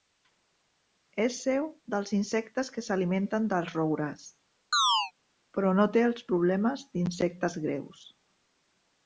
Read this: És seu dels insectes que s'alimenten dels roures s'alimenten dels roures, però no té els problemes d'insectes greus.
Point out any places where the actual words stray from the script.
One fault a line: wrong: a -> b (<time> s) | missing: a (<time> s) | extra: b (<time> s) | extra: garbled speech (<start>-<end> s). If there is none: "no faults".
missing: s'alimenten dels roures (4.2 s)